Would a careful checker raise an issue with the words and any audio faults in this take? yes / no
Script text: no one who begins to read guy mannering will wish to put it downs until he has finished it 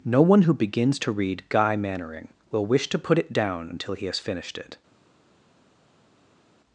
yes